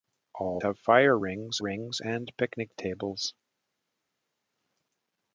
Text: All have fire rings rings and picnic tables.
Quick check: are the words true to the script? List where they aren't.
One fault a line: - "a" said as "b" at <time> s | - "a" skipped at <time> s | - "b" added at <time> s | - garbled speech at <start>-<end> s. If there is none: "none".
none